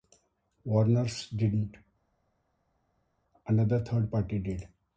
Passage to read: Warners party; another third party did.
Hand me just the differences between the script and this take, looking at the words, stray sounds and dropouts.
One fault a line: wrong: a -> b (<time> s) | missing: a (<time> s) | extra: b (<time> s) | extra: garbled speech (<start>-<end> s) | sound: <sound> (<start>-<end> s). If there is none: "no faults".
wrong: party -> didn't (1.3 s)